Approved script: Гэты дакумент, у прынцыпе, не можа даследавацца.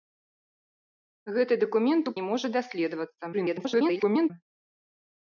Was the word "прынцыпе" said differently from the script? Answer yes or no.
yes